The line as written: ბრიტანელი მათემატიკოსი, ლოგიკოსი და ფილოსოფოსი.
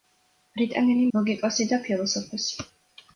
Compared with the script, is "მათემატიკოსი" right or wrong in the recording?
wrong